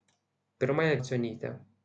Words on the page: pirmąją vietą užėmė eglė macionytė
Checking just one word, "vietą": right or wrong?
wrong